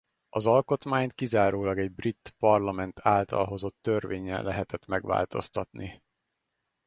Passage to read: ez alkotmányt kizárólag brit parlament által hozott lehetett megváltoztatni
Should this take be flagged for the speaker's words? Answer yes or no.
yes